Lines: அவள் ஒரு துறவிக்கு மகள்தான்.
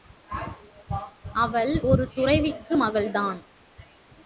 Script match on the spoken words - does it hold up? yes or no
yes